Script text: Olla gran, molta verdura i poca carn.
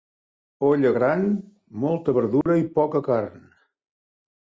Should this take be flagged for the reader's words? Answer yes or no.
no